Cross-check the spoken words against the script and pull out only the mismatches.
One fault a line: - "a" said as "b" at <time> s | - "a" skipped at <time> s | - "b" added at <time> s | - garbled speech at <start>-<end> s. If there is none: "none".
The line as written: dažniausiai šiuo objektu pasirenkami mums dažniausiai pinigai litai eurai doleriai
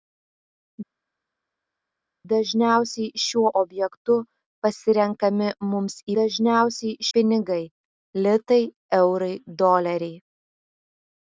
none